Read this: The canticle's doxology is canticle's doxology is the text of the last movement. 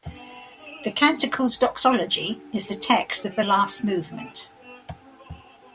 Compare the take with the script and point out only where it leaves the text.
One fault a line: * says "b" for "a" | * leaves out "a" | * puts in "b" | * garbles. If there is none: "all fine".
* leaves out "canticle's doxology is"